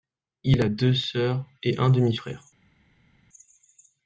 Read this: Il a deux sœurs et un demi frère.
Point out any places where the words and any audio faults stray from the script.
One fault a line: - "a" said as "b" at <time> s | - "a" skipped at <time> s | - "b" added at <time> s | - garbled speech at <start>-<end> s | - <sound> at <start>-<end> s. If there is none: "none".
none